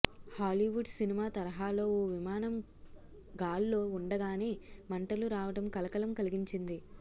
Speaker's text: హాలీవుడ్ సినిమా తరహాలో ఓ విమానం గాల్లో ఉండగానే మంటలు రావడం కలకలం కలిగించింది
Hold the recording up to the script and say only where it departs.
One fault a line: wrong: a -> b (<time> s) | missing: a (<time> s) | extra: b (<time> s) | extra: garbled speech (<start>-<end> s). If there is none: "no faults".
no faults